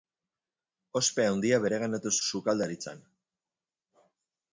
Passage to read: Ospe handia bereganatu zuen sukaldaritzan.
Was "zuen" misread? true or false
true